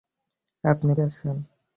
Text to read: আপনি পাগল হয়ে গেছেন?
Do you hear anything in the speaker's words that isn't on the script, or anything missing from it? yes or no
yes